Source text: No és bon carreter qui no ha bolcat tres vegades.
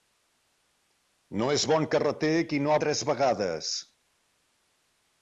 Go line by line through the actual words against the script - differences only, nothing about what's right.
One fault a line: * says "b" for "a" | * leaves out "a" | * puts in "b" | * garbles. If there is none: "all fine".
* leaves out "bolcat"